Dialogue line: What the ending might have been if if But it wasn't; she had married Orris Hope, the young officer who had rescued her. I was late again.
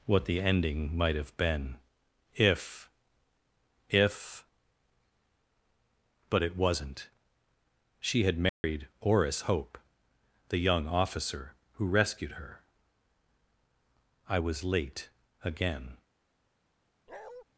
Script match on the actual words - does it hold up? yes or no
no